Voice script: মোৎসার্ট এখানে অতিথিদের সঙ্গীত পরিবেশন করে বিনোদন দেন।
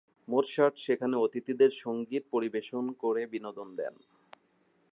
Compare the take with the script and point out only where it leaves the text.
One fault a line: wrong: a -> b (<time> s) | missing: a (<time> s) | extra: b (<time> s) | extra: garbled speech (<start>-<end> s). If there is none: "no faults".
wrong: এখানে -> সেখানে (0.8 s)